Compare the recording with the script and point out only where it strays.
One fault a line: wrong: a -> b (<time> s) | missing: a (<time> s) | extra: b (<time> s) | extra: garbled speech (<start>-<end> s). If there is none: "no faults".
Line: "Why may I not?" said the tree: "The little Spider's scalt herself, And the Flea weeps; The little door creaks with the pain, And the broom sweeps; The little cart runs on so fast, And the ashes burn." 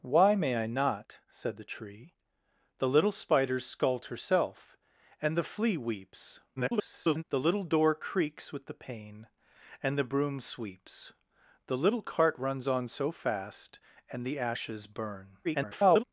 extra: garbled speech (6.6-7.2 s)
extra: garbled speech (15.4-16.0 s)